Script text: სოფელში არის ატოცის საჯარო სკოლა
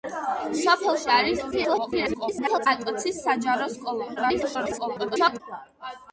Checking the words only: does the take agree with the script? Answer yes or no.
no